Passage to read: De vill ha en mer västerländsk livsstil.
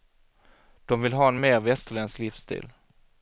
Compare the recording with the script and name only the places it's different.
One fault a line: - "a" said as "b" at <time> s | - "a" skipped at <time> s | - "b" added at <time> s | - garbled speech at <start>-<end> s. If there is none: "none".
none